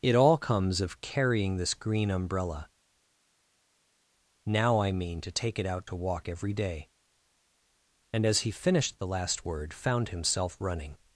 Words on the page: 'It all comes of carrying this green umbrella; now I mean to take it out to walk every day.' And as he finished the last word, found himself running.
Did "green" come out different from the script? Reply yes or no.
no